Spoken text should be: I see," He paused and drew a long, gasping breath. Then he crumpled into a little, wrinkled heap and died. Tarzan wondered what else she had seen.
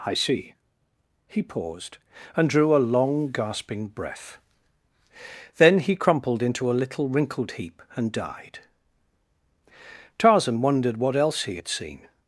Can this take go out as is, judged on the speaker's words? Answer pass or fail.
fail